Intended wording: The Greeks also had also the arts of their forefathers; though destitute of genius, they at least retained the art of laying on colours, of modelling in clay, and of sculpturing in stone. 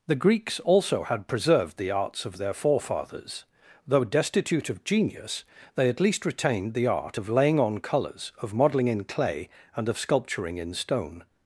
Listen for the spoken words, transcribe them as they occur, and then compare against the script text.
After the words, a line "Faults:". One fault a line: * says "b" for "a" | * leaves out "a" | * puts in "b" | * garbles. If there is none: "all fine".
The Greeks also had preserved the arts of their forefathers; though destitute of genius, they at least retained the art of laying on colours, of modelling in clay, and of sculpturing in stone.
Faults:
* says "preserved" for "also"